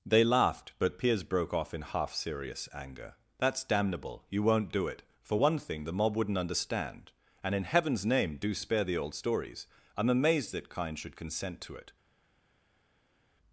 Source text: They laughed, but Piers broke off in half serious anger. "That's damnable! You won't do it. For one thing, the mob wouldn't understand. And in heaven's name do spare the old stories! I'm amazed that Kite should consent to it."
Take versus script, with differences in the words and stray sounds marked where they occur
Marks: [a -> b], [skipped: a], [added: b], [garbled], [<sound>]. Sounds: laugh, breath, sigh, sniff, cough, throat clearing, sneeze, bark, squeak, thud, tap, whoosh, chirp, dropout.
They laughed, but Piers broke off in half serious anger. "That's damnable! You won't do it. For one thing, the mob wouldn't understand. And in heaven's name do spare the old stories! I'm amazed that [Kite -> Kind] should consent to it."